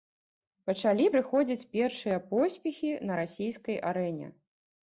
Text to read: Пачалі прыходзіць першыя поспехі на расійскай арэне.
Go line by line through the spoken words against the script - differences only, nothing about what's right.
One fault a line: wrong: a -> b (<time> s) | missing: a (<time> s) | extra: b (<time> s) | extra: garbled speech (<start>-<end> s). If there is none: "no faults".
no faults